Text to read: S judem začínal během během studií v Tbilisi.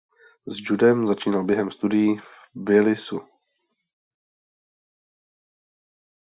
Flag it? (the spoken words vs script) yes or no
yes